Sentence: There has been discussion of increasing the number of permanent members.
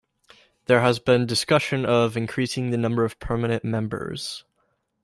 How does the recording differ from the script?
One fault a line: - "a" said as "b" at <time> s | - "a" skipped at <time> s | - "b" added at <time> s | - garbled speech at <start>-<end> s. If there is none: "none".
none